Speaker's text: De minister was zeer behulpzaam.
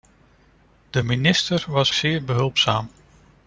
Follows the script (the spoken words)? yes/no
yes